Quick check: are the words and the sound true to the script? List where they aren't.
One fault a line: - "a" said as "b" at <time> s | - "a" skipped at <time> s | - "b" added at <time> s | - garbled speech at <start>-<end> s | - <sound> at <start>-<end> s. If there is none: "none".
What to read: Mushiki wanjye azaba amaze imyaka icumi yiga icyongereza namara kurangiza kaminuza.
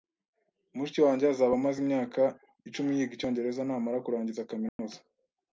- dropout at 4.7-4.8 s